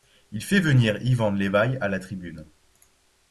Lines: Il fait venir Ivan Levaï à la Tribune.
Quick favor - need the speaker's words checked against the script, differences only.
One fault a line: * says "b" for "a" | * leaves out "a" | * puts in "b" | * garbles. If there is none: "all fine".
all fine